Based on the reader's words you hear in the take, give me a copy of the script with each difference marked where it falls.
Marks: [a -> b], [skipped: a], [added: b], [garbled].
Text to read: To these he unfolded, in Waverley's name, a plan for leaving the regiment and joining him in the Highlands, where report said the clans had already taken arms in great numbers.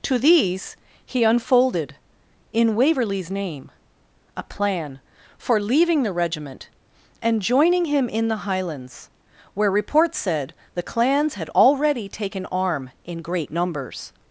To these he unfolded, in Waverley's name, a plan for leaving the regiment and joining him in the Highlands, where report said the clans had already taken [arms -> arm] in great numbers.